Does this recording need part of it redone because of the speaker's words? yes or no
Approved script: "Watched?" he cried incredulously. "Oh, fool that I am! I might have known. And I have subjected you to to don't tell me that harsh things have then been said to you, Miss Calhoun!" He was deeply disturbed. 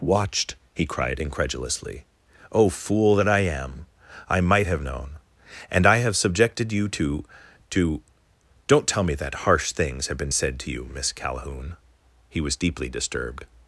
yes